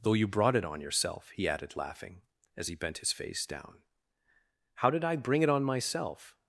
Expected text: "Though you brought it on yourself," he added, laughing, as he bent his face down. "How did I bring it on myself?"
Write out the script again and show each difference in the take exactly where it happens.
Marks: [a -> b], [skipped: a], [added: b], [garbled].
"Though you brought it on yourself," he added, laughing, as he bent his face down. "How did I bring it on myself?"